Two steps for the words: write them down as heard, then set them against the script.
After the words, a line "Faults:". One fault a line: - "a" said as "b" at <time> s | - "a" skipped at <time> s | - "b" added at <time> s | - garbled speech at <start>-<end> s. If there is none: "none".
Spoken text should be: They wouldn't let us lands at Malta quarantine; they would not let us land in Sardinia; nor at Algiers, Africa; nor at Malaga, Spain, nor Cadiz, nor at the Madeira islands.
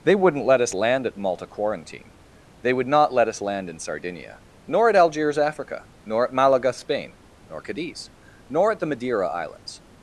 They wouldn't let us land at Malta quarantine; they would not let us land in Sardinia; nor at Algiers, Africa; nor at Malaga, Spain, nor Cadiz, nor at the Madeira islands.
Faults:
- "lands" said as "land" at 0.7 s